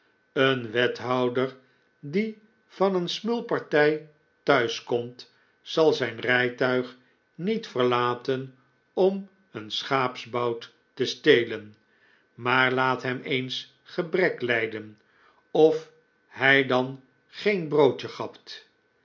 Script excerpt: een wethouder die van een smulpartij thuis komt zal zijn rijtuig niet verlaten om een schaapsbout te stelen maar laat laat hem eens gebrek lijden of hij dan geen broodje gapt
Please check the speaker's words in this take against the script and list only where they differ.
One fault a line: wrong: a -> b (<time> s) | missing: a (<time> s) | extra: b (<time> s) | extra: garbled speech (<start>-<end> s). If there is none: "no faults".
missing: laat (13.0 s)